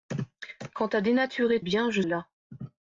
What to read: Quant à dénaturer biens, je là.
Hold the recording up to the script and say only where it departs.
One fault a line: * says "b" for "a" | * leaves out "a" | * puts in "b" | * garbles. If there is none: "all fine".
all fine